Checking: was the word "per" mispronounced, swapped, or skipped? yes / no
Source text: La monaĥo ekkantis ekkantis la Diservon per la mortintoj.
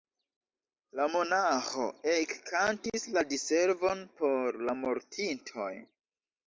yes